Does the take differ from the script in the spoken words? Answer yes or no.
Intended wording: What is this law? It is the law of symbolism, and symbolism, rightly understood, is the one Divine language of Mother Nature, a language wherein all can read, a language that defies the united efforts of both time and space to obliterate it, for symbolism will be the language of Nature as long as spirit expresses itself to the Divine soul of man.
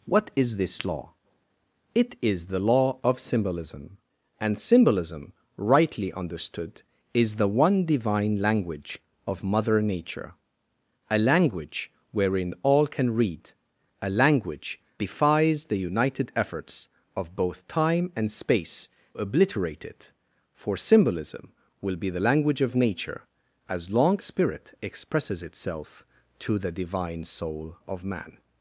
yes